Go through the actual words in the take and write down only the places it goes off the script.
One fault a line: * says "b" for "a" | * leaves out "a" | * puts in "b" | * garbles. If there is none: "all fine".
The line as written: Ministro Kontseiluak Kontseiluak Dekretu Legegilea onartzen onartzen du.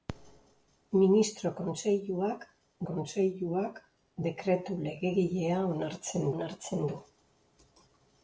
all fine